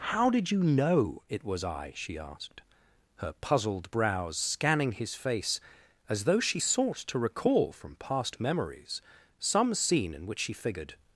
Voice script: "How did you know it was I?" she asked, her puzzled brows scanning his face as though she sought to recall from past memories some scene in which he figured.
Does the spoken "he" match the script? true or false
false